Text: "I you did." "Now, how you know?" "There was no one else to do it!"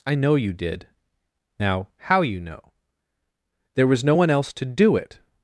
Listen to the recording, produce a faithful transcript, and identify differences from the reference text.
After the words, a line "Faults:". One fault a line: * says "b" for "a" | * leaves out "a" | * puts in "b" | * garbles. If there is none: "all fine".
"I know you did." "Now, how you know?" "There was no one else to do it!"
Faults:
* puts in "know"